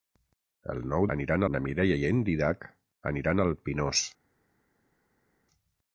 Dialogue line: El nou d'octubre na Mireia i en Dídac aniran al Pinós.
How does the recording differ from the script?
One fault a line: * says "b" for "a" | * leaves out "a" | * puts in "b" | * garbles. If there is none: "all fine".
* says "aniran" for "d'octubre"